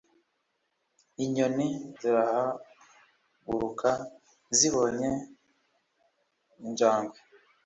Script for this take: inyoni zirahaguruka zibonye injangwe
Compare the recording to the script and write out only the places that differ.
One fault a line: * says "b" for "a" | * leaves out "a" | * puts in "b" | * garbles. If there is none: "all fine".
all fine